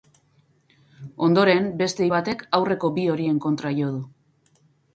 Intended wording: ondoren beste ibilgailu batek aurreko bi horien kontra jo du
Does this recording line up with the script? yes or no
no